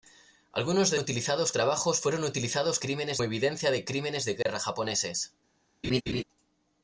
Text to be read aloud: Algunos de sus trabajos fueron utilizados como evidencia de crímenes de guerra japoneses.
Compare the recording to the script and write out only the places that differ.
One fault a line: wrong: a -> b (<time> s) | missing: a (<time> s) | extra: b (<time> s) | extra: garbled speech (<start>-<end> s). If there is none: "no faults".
wrong: sus -> utilizados (1.0 s)
wrong: como -> crímenes (2.8 s)